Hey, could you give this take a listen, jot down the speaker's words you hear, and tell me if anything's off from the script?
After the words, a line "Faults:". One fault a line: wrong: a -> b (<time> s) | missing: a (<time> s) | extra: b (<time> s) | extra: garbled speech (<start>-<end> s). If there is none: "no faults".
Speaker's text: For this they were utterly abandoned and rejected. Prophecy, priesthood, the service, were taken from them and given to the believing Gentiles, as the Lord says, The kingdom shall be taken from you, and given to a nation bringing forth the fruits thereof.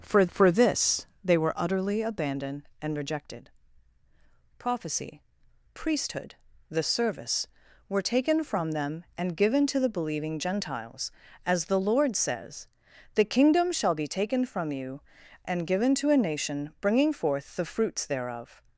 For for this they were utterly abandoned and rejected. Prophecy, priesthood, the service, were taken from them and given to the believing Gentiles, as the Lord says, The kingdom shall be taken from you, and given to a nation bringing forth the fruits thereof.
Faults:
extra: for (0.3 s)